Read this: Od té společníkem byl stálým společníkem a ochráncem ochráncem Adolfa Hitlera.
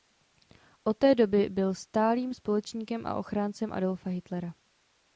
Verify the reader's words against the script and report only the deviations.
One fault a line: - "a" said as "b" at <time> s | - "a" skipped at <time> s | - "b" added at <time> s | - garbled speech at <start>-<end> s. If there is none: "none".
- "společníkem" said as "doby" at 1.1 s
- "ochráncem" skipped at 3.7 s